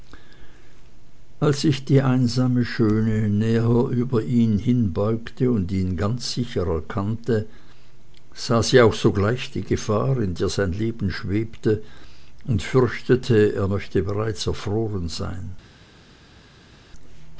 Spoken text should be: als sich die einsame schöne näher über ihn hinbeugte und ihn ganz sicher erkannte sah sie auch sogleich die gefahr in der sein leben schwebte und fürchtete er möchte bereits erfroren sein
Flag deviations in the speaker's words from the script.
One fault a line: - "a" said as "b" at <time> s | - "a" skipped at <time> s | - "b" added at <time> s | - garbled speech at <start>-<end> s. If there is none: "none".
none